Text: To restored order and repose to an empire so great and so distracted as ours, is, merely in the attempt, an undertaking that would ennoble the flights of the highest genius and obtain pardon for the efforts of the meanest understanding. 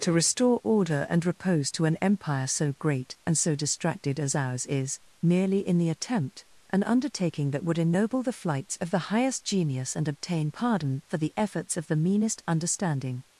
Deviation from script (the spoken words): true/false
true